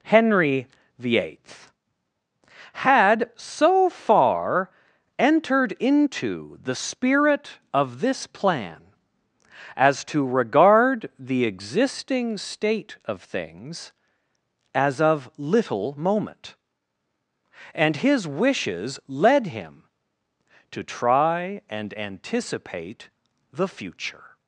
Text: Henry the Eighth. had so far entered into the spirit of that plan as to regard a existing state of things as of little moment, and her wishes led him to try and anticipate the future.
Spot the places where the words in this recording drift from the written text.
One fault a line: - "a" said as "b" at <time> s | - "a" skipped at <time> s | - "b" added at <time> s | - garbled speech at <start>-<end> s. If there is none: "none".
- "that" said as "this" at 8.0 s
- "a" said as "the" at 11.2 s
- "her" said as "his" at 18.0 s